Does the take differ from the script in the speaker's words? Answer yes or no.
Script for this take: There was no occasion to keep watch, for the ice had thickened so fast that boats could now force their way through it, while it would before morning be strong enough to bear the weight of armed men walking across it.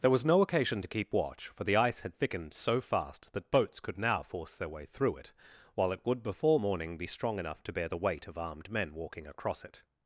no